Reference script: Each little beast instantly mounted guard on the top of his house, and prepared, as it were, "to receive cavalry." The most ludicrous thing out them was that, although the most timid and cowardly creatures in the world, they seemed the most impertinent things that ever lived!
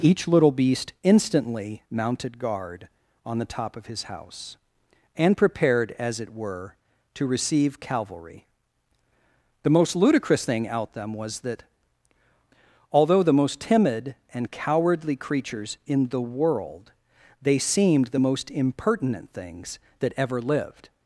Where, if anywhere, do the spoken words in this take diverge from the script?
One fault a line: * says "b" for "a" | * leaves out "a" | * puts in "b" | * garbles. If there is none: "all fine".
all fine